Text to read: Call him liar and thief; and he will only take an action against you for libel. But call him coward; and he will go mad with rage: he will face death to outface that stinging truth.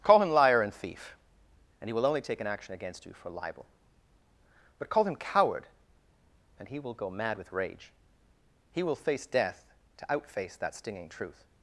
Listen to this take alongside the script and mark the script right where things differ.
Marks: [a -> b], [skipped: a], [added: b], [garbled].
Call him liar and thief; and he will only take an action against you for libel. But call him coward; and he will go mad with rage: he will face death to outface that stinging truth.